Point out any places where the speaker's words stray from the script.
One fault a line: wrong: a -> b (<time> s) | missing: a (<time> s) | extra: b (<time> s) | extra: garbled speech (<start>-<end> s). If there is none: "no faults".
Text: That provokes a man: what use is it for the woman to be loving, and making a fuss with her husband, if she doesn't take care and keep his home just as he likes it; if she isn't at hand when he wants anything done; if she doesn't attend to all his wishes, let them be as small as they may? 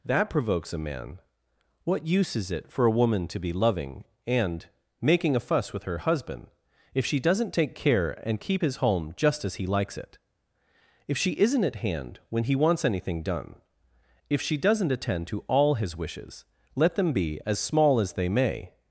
wrong: the -> a (2.9 s)